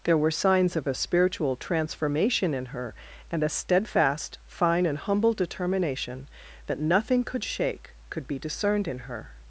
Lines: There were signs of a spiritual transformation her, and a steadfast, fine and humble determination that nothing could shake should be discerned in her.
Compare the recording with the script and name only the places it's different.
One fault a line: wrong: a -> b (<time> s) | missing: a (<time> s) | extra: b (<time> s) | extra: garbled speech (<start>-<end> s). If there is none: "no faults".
extra: in (2.5 s)
wrong: should -> could (8.1 s)